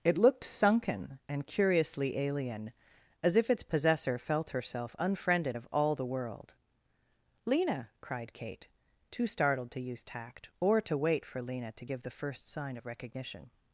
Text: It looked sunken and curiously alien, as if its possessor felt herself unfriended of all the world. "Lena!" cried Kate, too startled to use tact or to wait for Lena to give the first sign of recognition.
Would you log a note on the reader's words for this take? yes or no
no